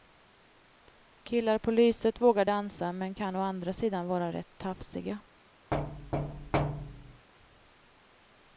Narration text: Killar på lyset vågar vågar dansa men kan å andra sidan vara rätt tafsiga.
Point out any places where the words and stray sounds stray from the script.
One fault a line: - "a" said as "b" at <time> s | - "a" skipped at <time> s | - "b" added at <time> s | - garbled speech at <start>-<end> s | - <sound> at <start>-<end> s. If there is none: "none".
- "vågar" skipped at 2.5 s
- thud at 5.7-7.3 s